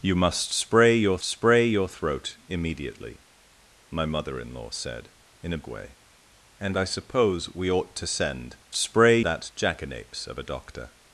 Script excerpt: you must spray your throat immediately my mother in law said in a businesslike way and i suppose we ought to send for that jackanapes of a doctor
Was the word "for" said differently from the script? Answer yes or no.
yes